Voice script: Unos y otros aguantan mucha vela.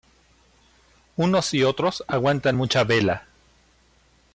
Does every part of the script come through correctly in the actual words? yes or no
yes